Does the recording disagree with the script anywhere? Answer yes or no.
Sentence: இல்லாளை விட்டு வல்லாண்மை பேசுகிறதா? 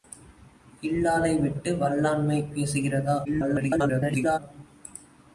yes